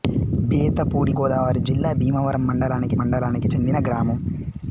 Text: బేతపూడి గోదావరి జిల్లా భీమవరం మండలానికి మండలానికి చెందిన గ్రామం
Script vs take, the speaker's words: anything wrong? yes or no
no